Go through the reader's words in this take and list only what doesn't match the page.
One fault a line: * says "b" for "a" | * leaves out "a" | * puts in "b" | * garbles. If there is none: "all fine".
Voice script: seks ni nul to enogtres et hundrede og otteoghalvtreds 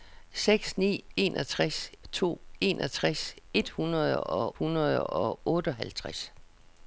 * says "enogtres" for "nul"
* puts in "hundrede og"